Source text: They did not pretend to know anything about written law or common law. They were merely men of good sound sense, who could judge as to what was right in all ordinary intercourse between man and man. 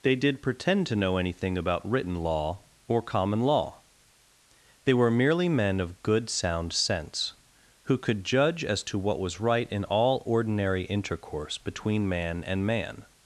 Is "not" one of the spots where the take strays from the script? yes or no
yes